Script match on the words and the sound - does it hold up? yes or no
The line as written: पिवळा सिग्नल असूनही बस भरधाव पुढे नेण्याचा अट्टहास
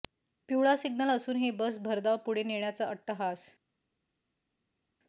yes